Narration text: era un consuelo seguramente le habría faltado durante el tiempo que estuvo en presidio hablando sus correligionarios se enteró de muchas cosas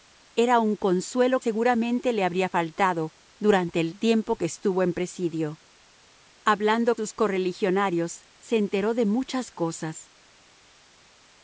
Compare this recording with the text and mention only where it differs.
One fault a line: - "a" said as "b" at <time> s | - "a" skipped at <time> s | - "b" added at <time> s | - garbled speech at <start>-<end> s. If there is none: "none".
none